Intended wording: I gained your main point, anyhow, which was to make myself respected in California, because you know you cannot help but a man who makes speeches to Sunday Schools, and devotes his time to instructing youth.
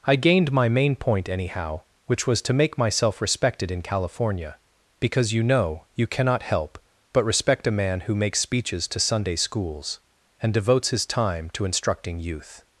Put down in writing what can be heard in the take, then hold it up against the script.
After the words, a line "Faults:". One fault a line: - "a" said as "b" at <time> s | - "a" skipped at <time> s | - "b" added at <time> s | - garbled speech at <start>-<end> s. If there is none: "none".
I gained my main point, anyhow, which was to make myself respected in California, because you know you cannot help but respect a man who makes speeches to Sunday Schools, and devotes his time to instructing youth.
Faults:
- "your" said as "my" at 0.5 s
- "respect" added at 7.2 s